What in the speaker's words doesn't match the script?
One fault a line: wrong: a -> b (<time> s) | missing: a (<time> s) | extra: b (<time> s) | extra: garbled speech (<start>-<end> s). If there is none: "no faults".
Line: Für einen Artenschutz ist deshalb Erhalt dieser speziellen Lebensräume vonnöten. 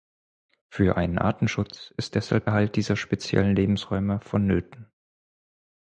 no faults